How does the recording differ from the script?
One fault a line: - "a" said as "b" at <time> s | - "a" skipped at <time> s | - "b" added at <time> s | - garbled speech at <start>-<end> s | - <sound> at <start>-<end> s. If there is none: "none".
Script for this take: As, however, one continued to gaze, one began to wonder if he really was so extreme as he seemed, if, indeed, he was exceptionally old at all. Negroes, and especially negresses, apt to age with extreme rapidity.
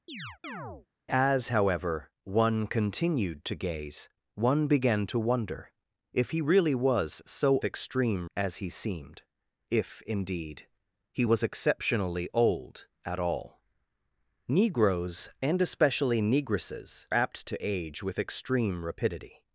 - chirp at 0.1-0.9 s